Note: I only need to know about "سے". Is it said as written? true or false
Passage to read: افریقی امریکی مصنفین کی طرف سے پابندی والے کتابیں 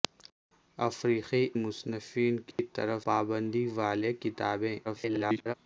false